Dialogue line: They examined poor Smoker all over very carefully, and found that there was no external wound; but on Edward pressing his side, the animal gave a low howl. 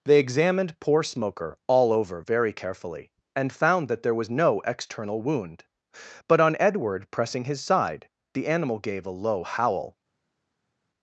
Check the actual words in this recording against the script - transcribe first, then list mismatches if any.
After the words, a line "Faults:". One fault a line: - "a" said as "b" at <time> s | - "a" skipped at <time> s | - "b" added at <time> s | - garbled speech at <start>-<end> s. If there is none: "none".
They examined poor Smoker all over very carefully, and found that there was no external wound; but on Edward pressing his side, the animal gave a low howl.
Faults:
none